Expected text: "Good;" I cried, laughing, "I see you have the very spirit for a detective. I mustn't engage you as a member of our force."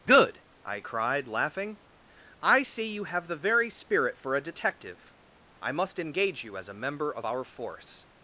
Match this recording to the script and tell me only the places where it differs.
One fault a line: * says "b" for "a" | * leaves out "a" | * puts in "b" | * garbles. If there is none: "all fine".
* says "must" for "mustn't"